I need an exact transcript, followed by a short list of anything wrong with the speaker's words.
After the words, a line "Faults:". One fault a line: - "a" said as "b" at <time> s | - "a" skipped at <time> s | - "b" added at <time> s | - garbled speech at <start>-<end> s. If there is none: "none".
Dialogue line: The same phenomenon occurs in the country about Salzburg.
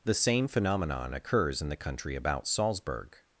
The same phenomenon occurs in the country about Salzburg.
Faults:
none